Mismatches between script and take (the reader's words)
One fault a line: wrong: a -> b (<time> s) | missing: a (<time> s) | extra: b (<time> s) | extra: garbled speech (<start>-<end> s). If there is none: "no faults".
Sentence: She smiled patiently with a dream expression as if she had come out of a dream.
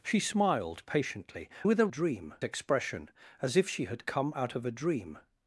no faults